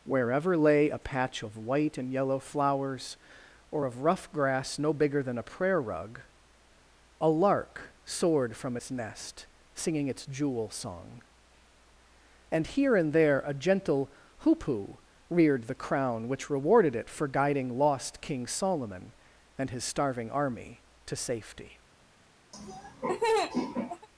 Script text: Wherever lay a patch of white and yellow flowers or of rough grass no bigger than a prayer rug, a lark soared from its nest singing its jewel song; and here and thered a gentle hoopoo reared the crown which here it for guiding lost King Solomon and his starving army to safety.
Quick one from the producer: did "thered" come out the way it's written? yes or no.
no